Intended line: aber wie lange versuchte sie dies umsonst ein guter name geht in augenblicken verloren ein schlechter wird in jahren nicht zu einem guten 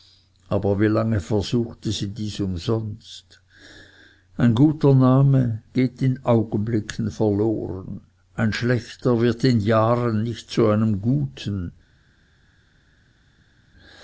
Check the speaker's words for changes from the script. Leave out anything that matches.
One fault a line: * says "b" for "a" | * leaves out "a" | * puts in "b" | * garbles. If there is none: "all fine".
all fine